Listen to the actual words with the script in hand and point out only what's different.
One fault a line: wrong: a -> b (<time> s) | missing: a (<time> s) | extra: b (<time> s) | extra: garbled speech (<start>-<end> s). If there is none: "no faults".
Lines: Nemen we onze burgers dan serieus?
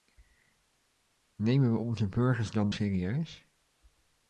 no faults